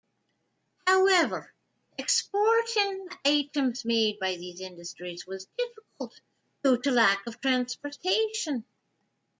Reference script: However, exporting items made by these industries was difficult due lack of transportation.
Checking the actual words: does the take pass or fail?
fail